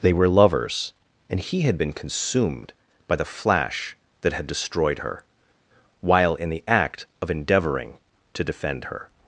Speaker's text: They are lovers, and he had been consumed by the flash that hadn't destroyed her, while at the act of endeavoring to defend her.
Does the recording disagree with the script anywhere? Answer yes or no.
yes